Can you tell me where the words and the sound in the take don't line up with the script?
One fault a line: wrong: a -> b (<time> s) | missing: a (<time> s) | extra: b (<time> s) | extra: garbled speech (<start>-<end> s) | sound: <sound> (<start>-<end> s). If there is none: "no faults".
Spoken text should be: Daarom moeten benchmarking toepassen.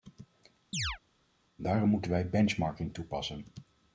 sound: chirp (0.7-1.0 s)
extra: wij (2.1 s)